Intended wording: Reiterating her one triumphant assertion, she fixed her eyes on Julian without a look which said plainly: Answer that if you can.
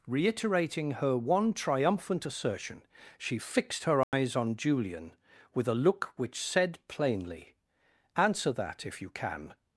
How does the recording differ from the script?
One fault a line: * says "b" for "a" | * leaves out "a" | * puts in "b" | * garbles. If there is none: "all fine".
* says "with" for "without"